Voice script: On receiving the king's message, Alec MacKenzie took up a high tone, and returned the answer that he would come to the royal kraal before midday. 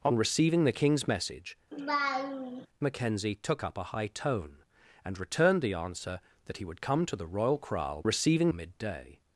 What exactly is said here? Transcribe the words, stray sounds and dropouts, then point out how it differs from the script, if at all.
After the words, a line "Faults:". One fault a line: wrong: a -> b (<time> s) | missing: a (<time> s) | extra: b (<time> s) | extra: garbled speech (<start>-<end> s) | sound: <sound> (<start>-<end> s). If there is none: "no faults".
On receiving the king's message, MacKenzie took up a high tone, and returned the answer that he would come to the royal kraal receiving midday.
Faults:
missing: Alec (1.6 s)
sound: laugh (1.7-2.7 s)
wrong: before -> receiving (8.0 s)